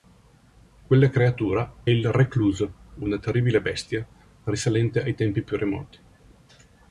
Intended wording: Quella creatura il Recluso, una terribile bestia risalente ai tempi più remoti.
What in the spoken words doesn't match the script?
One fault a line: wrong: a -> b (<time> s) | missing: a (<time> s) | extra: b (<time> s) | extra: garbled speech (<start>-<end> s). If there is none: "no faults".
no faults